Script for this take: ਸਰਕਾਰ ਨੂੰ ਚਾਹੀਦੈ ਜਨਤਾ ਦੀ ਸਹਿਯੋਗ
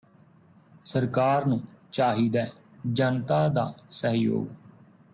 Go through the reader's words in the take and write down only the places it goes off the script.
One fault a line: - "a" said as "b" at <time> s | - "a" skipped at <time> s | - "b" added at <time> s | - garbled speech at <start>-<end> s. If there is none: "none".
- "ਦੀ" said as "ਦਾ" at 3.5 s